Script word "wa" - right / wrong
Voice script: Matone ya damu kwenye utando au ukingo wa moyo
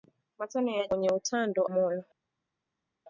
wrong